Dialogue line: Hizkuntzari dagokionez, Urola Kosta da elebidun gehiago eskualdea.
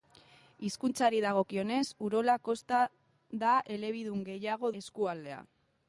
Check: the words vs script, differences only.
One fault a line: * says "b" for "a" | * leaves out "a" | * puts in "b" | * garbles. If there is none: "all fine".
all fine